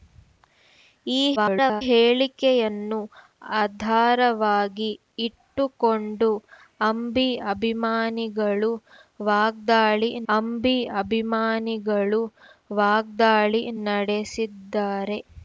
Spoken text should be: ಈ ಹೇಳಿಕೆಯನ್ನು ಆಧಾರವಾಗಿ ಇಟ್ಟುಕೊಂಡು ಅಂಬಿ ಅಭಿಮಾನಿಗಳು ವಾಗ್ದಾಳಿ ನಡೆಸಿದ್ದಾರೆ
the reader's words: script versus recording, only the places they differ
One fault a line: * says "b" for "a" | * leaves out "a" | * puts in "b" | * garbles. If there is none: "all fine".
* garbles
* puts in "ಅಂಬಿ ಅಭಿಮಾನಿಗಳು ವಾಗ್ದಾಳಿ"